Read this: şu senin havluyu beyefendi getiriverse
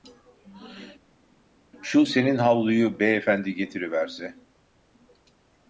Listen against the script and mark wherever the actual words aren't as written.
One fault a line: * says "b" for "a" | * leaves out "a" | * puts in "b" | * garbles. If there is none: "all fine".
all fine